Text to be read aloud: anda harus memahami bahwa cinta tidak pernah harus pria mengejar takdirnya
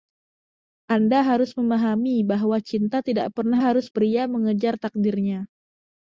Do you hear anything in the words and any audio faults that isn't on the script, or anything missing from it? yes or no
no